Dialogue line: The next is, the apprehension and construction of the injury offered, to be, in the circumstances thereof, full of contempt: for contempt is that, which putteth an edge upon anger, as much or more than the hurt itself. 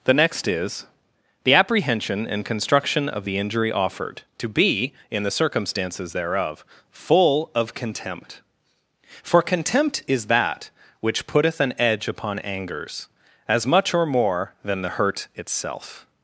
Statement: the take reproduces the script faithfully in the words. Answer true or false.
false